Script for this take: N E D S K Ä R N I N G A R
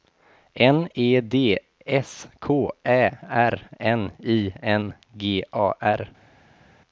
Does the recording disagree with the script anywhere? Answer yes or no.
no